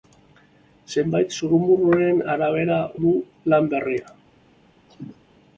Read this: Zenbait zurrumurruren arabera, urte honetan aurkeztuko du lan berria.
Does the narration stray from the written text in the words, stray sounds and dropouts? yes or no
yes